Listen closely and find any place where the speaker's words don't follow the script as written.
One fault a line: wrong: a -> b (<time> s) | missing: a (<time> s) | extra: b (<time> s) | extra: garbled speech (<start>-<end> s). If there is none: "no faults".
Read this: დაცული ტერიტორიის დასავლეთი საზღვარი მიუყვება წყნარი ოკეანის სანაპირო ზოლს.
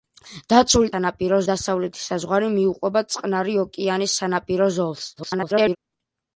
wrong: ტერიტორიის -> სანაპირო (0.9 s)
extra: garbled speech (5.2-5.8 s)